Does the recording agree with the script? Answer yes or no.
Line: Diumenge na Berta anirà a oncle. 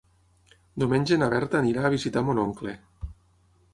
no